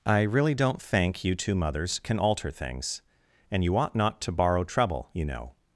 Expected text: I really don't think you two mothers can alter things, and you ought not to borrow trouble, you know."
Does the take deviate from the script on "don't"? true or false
false